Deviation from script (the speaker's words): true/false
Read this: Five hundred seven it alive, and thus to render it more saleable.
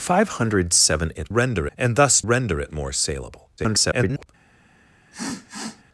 true